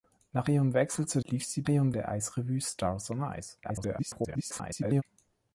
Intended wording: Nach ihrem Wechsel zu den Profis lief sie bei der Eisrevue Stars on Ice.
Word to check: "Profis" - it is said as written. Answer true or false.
false